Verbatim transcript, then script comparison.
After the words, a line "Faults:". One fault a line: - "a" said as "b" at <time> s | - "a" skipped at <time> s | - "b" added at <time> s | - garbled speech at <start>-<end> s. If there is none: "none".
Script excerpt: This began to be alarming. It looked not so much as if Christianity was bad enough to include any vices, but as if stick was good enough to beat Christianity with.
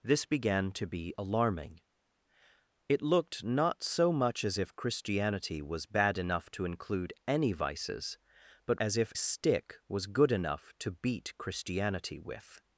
This began to be alarming. It looked not so much as if Christianity was bad enough to include any vices, but as if stick was good enough to beat Christianity with.
Faults:
none